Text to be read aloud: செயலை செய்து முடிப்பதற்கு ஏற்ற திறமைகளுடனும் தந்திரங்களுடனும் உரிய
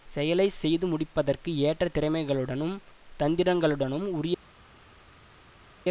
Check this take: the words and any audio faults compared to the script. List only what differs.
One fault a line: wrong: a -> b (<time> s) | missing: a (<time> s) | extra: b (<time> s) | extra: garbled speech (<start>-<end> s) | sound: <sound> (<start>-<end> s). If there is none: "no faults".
no faults